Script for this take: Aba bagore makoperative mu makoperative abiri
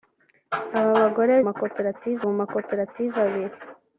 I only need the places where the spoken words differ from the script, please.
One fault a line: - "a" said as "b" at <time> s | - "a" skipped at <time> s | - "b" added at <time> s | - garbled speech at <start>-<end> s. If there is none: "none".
none